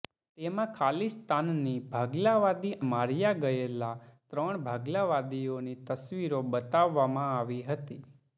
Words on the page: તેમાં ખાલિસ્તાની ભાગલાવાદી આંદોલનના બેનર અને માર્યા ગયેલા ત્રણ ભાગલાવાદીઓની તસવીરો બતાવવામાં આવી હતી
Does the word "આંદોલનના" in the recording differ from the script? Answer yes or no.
yes